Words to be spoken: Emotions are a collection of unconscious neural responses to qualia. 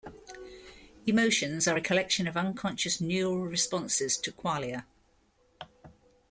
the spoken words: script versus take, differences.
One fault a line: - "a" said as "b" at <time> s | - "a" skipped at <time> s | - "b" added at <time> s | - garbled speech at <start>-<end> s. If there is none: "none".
none